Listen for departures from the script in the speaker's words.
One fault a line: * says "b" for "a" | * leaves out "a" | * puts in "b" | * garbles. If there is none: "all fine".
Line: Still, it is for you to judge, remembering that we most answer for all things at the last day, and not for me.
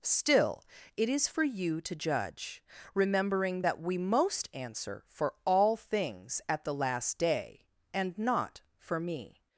all fine